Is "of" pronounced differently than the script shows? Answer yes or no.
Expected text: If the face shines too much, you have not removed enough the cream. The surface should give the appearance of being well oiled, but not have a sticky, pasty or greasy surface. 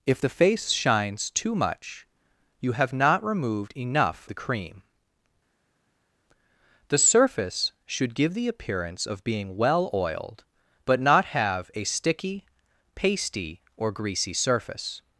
no